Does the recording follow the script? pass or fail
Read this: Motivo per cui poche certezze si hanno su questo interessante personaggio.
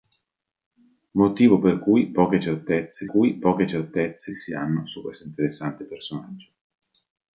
fail